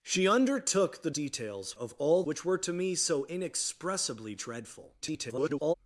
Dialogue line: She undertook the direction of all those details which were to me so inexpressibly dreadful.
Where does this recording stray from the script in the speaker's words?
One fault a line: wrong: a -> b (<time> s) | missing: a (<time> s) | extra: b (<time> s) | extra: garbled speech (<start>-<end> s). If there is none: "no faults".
wrong: direction -> details (1.1 s)
missing: those details (2.2 s)
extra: garbled speech (5.0-5.7 s)